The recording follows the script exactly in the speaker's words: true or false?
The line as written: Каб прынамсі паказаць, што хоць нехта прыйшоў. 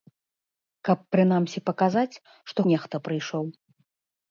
false